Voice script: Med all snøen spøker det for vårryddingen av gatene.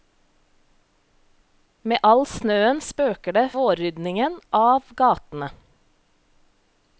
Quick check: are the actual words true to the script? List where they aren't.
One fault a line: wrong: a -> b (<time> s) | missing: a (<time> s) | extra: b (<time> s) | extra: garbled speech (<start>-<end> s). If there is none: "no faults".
missing: for (3.5 s)